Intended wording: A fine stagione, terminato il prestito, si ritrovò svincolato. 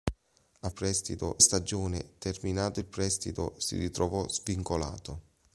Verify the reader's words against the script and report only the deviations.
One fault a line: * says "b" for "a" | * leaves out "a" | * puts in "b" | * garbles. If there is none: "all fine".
* says "prestito" for "fine"